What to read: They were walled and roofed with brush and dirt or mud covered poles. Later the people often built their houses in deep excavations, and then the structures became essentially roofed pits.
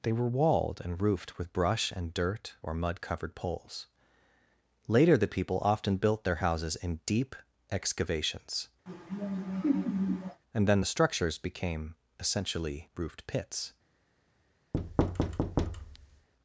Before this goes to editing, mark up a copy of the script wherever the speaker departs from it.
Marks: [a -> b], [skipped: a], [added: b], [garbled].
They were walled and roofed with brush and dirt or mud covered poles. Later the people often built their houses in deep excavations, and then the structures became essentially roofed pits.